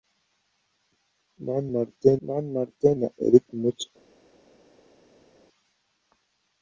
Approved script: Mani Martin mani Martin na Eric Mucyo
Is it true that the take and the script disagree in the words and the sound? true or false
false